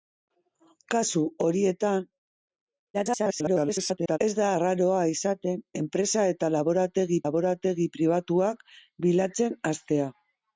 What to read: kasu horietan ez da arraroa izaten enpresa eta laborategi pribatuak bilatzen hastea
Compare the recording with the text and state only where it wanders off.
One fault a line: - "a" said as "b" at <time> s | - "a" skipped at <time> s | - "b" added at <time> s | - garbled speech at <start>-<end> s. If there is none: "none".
- garbled speech at 2.9-4.2 s
- "laborategi" added at 7.3 s